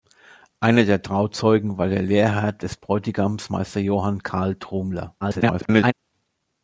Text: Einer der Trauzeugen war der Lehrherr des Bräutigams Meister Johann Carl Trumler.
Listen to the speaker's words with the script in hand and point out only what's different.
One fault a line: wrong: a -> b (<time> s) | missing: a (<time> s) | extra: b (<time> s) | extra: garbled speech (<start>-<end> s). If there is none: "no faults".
extra: garbled speech (5.2-5.9 s)